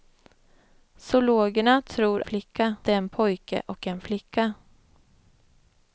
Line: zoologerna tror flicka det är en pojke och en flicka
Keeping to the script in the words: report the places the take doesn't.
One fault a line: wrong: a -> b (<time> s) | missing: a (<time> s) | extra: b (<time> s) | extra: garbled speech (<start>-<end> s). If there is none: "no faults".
no faults